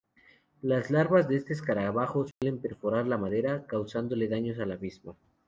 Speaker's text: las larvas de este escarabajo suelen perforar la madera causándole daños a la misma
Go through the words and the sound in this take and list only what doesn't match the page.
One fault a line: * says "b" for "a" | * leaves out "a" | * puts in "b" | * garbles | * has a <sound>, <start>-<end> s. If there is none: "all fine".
* has a dropout, 2.3-2.4 s